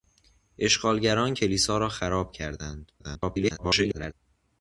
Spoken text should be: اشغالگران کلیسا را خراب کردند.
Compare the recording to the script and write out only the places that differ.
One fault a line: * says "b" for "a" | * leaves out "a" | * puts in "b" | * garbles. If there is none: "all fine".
* garbles